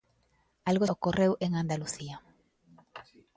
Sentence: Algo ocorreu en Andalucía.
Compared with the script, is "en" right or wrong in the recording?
right